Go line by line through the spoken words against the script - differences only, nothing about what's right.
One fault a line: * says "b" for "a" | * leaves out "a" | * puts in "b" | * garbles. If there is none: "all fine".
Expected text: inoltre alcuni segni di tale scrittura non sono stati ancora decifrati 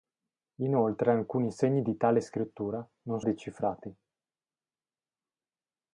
* leaves out "sono stati ancora"